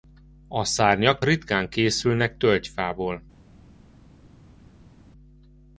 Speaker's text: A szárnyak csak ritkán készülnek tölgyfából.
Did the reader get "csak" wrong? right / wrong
wrong